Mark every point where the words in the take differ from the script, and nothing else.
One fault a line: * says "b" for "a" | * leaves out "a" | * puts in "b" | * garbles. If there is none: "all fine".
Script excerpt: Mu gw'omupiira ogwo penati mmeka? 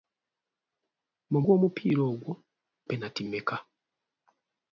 all fine